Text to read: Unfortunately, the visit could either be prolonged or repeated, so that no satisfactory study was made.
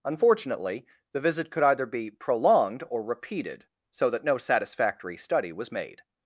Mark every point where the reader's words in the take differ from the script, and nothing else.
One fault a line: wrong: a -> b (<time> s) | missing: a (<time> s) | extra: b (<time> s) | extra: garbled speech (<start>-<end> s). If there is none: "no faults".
no faults